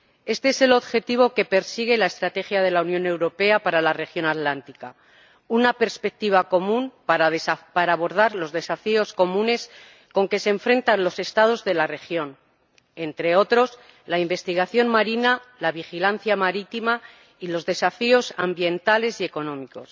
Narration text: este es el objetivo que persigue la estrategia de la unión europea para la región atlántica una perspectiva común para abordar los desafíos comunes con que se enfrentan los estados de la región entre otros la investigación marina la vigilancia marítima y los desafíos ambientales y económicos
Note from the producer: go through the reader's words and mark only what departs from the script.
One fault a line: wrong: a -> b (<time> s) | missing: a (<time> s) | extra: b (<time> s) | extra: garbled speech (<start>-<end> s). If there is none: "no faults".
no faults